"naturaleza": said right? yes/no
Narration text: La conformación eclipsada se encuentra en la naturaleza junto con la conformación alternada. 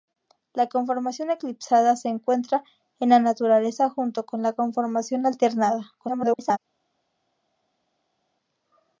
yes